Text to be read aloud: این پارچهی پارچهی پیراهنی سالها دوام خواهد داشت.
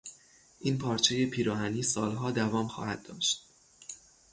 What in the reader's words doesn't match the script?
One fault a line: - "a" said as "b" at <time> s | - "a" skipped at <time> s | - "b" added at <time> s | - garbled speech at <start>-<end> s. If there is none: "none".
- "پارچهی" skipped at 1.2 s